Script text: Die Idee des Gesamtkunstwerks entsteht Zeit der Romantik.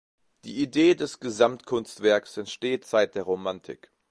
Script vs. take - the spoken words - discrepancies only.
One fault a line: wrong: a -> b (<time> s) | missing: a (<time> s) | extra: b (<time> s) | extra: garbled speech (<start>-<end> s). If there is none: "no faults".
no faults